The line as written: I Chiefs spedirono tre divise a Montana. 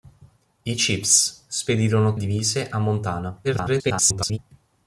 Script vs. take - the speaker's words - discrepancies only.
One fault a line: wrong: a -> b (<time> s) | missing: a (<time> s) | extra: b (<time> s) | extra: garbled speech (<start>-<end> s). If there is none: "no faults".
missing: tre (2.1 s)
extra: garbled speech (3.4-4.4 s)